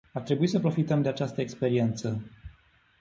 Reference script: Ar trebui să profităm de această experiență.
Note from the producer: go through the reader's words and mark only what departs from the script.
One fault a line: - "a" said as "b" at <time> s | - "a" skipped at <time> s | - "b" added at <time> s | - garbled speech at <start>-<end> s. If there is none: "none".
none